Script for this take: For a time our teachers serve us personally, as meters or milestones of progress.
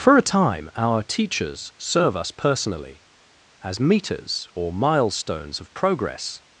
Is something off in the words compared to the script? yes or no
no